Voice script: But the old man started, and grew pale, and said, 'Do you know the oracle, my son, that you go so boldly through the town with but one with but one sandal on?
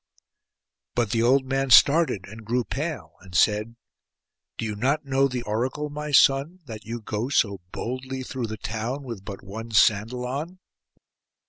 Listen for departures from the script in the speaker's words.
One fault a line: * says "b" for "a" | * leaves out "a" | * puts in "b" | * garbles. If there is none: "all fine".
* puts in "not"
* leaves out "with but one"